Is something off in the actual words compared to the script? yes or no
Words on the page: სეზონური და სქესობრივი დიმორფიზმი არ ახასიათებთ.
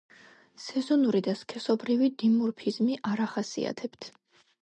no